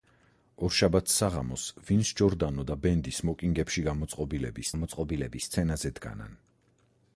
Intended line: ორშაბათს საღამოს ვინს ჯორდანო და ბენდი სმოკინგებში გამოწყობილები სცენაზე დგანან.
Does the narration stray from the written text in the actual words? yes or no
yes